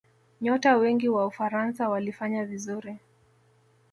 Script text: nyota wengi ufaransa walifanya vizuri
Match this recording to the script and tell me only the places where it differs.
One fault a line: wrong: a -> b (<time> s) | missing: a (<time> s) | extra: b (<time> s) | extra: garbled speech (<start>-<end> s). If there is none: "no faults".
extra: wa (1.1 s)